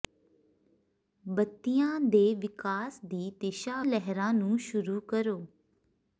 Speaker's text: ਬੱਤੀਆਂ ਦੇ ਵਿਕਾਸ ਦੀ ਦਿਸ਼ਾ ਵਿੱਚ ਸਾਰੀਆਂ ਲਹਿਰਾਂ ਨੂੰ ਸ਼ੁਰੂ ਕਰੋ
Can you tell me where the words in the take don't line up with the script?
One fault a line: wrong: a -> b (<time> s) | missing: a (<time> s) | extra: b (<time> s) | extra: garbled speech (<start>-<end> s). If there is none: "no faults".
missing: ਵਿੱਚ ਸਾਰੀਆਂ (3.8 s)